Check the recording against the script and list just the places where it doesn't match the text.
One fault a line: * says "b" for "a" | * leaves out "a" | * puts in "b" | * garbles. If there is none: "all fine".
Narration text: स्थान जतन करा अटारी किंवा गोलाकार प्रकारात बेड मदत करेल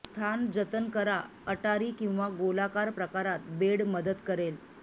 all fine